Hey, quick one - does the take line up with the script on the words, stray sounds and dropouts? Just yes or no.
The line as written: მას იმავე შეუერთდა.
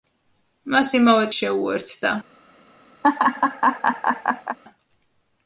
no